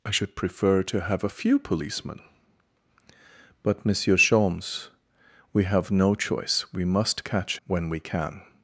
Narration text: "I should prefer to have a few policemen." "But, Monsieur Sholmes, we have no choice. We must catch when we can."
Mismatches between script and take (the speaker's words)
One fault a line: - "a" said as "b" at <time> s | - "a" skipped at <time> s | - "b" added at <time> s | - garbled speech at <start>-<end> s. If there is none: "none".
none